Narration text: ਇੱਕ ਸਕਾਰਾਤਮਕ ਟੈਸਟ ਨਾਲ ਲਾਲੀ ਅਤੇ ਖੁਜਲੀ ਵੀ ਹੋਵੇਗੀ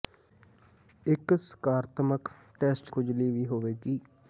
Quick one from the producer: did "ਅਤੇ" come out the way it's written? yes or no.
no